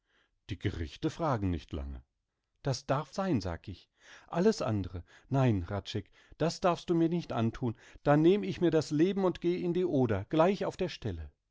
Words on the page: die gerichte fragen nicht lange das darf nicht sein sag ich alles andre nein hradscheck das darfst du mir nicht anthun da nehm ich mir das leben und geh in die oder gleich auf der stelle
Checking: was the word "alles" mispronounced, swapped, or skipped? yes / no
no